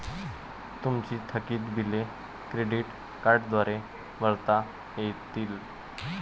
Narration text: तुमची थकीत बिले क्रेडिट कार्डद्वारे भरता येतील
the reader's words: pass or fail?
pass